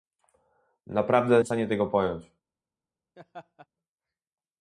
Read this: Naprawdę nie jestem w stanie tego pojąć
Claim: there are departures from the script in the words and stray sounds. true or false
true